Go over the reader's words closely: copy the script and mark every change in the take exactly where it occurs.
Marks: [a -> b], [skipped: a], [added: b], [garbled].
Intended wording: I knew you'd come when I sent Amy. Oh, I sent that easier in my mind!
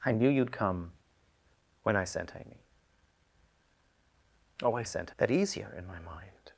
I knew you'd come when I sent Amy. Oh, I sent that easier in my mind!